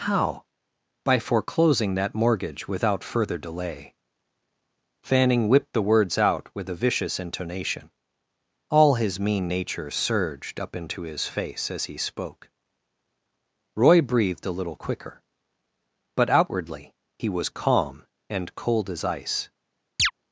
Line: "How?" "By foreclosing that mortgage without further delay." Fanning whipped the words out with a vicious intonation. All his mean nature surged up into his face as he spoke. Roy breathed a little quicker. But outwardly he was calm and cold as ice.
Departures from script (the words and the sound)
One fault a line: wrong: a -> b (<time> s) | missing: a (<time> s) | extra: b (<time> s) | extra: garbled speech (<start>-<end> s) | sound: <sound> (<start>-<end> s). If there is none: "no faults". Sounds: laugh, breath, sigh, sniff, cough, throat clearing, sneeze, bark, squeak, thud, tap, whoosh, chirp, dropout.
sound: chirp (20.0-20.1 s)